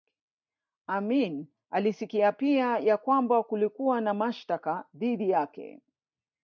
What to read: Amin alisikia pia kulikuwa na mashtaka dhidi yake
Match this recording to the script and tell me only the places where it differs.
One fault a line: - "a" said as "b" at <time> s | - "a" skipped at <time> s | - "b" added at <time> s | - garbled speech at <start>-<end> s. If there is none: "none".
- "ya kwamba" added at 2.8 s